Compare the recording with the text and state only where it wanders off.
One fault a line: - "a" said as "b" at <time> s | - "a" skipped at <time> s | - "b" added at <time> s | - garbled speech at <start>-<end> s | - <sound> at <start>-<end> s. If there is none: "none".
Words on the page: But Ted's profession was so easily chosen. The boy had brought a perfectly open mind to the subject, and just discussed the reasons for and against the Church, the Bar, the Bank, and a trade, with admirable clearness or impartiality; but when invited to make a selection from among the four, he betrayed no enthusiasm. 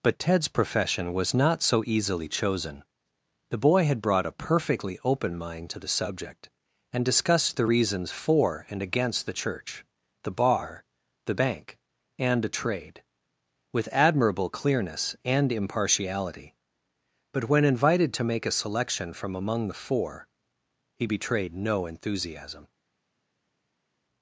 - "not" added at 1.3 s
- "just" skipped at 7.0 s
- "or" said as "and" at 15.2 s